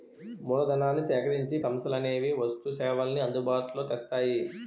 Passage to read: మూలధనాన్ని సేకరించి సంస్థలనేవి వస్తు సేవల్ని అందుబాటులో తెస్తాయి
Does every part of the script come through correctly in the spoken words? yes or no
yes